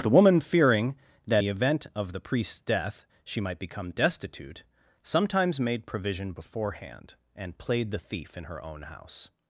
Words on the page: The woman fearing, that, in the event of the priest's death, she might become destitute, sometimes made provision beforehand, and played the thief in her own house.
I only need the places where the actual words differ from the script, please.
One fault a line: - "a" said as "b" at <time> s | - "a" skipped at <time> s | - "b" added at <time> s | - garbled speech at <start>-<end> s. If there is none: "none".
- "in" skipped at 1.4 s